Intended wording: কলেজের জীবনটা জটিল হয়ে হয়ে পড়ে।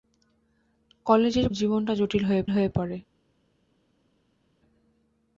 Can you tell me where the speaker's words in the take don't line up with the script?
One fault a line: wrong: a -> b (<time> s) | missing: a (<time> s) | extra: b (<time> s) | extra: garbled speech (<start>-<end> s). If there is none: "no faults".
no faults